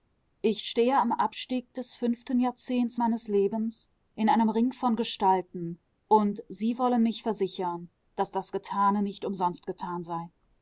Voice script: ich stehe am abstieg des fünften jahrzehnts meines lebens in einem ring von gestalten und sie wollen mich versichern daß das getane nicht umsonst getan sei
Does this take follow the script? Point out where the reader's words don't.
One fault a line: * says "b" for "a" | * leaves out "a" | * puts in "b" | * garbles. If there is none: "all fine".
all fine